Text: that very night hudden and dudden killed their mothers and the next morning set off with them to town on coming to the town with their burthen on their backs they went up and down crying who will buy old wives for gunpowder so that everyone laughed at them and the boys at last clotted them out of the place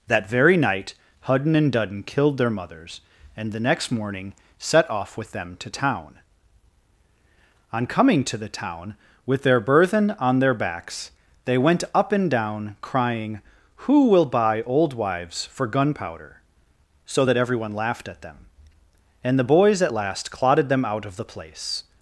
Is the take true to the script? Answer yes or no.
yes